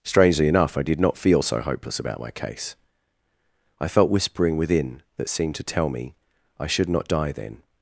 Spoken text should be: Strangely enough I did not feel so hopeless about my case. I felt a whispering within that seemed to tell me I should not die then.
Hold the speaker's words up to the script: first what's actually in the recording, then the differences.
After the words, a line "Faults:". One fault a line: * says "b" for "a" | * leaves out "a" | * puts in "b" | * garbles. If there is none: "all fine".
Strangely enough I did not feel so hopeless about my case. I felt whispering within that seemed to tell me I should not die then.
Faults:
* leaves out "a"